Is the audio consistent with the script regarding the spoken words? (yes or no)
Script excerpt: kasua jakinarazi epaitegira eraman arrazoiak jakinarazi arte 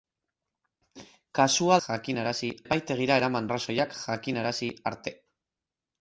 yes